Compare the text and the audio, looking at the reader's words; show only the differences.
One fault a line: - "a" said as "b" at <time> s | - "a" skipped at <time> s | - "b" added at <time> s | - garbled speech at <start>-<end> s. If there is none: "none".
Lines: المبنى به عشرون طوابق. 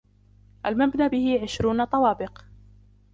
none